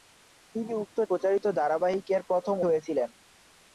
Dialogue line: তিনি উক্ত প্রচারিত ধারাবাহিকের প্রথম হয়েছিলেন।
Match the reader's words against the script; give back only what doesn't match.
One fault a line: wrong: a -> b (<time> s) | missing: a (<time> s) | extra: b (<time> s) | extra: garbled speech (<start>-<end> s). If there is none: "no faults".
no faults